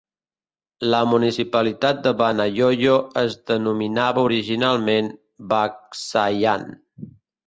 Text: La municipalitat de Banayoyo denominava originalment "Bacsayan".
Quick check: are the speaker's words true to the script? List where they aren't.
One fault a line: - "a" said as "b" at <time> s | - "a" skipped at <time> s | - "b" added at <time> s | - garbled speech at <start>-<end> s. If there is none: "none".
- "es" added at 3.2 s